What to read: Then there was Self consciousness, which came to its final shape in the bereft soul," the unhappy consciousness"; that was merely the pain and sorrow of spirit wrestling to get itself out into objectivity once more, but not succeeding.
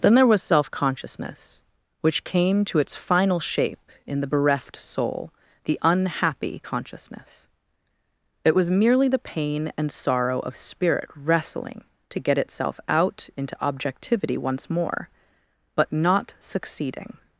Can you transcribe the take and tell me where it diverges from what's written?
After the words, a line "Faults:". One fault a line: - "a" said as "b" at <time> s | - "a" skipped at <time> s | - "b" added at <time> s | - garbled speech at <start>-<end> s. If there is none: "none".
Then there was Self consciousness, which came to its final shape in the bereft soul," the unhappy consciousness"; it was merely the pain and sorrow of spirit wrestling to get itself out into objectivity once more, but not succeeding.
Faults:
- "that" said as "it" at 8.4 s